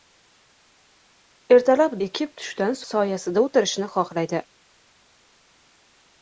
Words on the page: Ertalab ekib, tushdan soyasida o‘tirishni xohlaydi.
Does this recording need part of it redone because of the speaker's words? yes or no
no